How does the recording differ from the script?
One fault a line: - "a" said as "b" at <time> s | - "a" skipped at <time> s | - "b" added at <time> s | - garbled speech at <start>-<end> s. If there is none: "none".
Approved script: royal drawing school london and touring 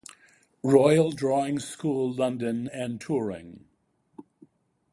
none